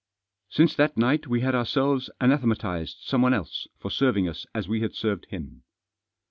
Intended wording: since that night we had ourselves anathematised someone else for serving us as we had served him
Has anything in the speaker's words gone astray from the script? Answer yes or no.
no